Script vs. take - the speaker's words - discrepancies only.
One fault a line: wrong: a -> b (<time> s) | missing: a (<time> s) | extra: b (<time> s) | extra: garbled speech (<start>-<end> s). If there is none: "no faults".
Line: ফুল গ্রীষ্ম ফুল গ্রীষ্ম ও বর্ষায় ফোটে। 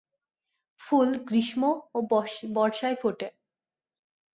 missing: ফুল গ্রীষ্ম (1.6 s)